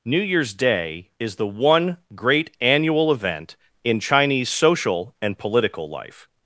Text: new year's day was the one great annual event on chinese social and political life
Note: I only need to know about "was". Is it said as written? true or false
false